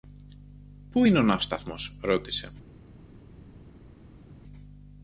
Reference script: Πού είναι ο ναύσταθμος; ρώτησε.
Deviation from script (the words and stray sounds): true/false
false